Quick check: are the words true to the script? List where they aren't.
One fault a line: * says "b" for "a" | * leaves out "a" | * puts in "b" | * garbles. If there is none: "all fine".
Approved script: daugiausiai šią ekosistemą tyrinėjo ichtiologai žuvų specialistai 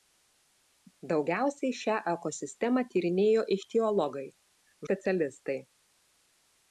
* leaves out "žuvų"